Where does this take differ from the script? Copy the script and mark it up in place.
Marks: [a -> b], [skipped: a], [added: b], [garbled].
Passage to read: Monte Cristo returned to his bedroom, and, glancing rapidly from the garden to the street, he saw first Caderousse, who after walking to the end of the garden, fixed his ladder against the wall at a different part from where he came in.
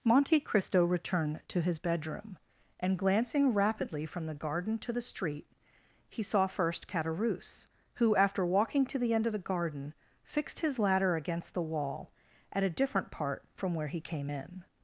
Monte Cristo returned to his bedroom, and, glancing rapidly from the garden to the street, he saw first Caderousse, who after walking to the end of the garden, fixed his ladder against the wall at a different part from where he came in.